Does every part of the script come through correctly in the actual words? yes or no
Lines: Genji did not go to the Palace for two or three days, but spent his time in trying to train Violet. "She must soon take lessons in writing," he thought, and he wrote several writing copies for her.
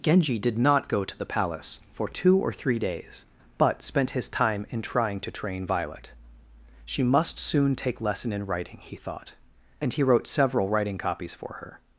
no